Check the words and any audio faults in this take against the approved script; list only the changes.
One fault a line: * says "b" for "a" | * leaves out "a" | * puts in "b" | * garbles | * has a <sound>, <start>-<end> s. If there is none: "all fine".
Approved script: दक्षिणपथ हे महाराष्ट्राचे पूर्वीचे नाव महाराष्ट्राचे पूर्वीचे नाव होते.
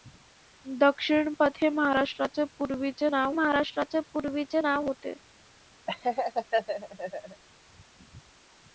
* has a laugh, 5.9-7.4 s